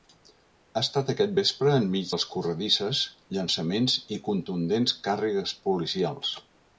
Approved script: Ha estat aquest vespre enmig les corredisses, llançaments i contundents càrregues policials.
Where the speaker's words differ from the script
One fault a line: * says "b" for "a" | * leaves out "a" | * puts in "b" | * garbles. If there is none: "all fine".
all fine